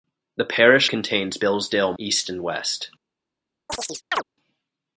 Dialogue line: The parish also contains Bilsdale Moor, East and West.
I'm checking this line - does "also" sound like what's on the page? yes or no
no